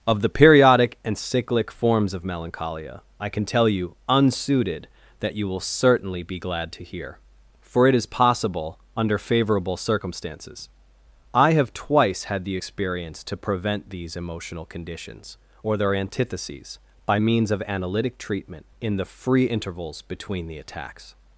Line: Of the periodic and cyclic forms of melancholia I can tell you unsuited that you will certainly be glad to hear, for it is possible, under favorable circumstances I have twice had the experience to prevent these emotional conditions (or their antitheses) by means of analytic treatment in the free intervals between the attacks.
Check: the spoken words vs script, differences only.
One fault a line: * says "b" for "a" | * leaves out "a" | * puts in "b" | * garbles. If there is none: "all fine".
all fine